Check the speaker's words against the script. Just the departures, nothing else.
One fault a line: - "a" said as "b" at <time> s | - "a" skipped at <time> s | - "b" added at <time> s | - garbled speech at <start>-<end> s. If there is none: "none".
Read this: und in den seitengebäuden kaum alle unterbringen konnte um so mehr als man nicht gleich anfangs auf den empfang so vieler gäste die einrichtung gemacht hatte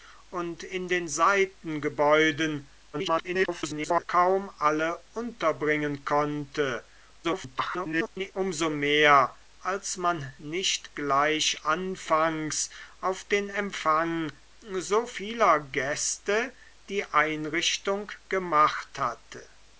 - garbled speech at 2.9-4.0 s
- garbled speech at 7.2-8.3 s